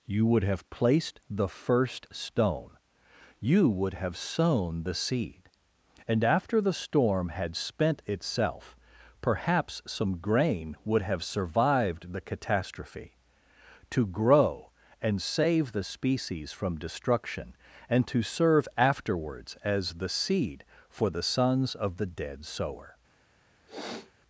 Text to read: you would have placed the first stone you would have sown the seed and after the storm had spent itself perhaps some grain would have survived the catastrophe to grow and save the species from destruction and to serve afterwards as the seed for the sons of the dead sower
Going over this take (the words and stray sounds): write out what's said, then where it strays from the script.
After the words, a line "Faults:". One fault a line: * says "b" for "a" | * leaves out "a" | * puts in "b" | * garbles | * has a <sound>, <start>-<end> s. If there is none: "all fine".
you would have placed the first stone you would have sown the seed and after the storm had spent itself perhaps some grain would have survived the catastrophe to grow and save the species from destruction and to serve afterwards as the seed for the sons of the dead sower
Faults:
* has a sniff, 23.7-24.1 s